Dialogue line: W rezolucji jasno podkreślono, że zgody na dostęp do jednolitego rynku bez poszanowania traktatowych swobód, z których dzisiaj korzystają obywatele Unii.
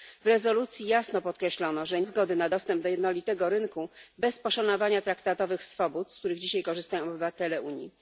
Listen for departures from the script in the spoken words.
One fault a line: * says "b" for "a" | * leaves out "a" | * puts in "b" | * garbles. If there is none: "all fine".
all fine